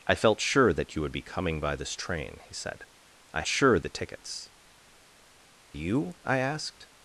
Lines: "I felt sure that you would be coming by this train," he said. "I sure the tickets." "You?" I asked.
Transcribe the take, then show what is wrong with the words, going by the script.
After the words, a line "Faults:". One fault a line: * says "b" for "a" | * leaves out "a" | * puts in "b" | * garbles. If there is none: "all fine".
"I felt sure that you would be coming by this train," he said. "I sure the tickets." "You?" I asked.
Faults:
all fine